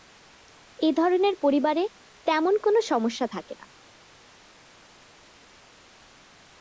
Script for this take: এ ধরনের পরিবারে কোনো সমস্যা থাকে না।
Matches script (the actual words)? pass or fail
fail